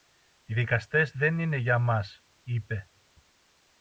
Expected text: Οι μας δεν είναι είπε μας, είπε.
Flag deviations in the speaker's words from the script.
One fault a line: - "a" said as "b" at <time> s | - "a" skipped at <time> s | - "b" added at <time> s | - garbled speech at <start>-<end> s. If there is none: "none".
- "μας" said as "δικαστές" at 0.5 s
- "είπε" said as "για" at 1.6 s